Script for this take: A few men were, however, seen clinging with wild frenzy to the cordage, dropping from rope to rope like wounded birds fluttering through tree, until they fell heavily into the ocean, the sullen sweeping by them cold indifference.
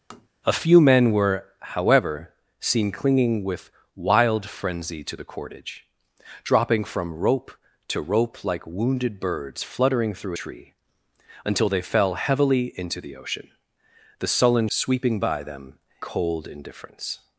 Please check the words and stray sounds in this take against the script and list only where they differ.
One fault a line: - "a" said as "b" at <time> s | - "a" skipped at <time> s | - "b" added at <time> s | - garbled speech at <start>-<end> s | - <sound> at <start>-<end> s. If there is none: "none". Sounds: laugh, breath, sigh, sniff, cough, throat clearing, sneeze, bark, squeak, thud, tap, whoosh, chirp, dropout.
- tap at 0.1-0.3 s